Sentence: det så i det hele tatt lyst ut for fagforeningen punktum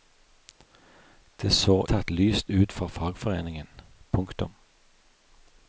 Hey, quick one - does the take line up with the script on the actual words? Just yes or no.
no